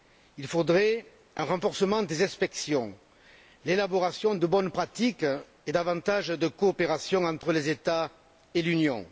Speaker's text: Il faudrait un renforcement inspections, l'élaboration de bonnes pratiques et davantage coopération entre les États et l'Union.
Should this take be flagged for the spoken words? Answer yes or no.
yes